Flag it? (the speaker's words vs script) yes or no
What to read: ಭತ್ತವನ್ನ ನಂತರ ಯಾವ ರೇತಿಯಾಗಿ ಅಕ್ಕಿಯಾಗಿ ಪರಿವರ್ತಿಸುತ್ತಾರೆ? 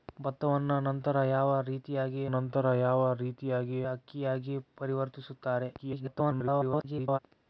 yes